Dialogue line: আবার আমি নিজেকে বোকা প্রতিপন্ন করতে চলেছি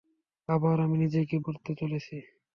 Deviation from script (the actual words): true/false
true